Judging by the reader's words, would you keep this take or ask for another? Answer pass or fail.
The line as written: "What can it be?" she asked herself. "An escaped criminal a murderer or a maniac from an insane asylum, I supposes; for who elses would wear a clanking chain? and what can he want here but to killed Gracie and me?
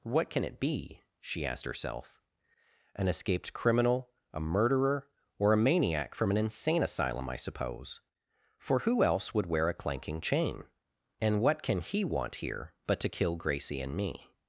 fail